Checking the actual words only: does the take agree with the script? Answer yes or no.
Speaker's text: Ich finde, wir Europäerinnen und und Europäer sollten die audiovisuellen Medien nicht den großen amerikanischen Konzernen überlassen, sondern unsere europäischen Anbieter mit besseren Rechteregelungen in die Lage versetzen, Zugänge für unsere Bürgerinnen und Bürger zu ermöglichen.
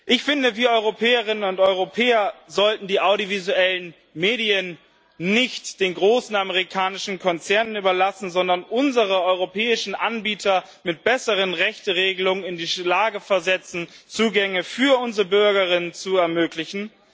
no